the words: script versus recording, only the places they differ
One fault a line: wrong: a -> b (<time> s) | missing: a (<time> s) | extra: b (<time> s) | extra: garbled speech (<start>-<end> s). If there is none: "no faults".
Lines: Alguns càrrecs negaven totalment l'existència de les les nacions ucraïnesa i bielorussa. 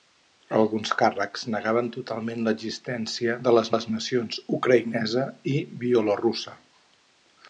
no faults